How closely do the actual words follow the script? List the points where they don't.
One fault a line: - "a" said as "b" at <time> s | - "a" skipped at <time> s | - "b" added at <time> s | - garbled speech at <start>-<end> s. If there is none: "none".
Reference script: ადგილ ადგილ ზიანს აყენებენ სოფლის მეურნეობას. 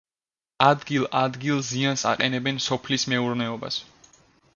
none